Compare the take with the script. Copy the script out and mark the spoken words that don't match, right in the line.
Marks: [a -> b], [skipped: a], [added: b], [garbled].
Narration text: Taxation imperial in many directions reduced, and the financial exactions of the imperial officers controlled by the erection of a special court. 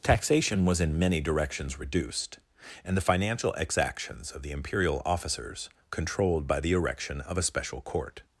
Taxation [imperial -> was] in many directions reduced, and the financial exactions of the imperial officers controlled by the erection of a special court.